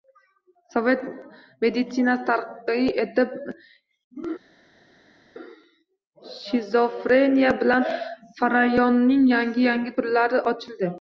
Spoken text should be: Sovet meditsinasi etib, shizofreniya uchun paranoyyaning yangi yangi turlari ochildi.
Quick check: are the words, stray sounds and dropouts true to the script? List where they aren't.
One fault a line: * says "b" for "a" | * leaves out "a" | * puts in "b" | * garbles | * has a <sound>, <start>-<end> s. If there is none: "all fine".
* puts in "taraqqiy"
* says "bilan" for "uchun"